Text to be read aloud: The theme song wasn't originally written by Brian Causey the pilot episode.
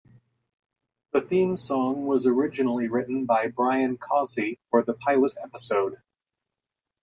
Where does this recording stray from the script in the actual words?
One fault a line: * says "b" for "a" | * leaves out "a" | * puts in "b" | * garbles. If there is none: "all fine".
* says "was" for "wasn't"
* puts in "for"